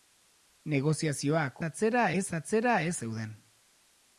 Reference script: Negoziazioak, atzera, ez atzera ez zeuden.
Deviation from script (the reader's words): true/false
false